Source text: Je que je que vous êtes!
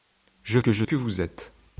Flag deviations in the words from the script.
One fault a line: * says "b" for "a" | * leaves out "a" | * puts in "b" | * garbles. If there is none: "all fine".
all fine